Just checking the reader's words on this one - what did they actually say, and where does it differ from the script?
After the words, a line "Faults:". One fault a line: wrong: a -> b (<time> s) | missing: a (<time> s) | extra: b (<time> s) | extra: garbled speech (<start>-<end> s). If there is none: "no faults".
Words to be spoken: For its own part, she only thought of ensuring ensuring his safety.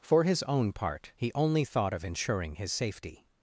For his own part, he only thought of ensuring his safety.
Faults:
wrong: its -> his (0.2 s)
wrong: she -> he (1.1 s)
missing: ensuring (2.5 s)